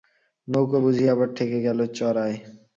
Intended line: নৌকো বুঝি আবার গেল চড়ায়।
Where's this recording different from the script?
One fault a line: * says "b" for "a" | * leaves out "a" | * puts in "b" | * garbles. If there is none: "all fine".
* puts in "ঠেকে"